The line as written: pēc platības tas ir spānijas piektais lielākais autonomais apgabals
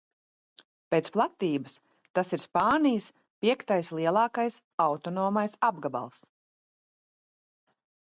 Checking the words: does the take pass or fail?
pass